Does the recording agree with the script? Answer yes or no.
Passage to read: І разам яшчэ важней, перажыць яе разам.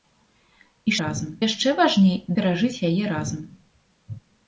yes